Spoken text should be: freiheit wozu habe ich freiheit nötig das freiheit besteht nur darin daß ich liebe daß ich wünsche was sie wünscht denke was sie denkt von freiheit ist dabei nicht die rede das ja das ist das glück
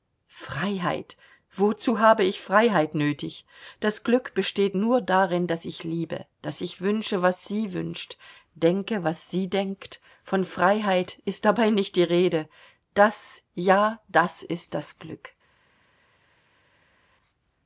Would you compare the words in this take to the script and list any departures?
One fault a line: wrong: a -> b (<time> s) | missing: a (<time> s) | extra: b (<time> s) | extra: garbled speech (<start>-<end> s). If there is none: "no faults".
wrong: freiheit -> glück (4.0 s)